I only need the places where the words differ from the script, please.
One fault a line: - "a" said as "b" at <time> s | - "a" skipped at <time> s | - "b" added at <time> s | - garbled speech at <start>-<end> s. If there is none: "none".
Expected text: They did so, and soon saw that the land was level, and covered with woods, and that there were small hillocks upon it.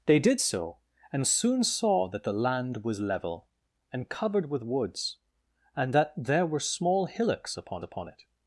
- "upon" added at 7.8 s